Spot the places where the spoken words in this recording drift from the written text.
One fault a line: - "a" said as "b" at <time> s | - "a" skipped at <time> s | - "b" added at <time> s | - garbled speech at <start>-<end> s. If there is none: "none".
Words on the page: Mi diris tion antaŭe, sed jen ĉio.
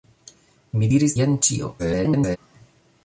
- "tion antaŭe sed" skipped at 1.1 s
- garbled speech at 1.8-2.4 s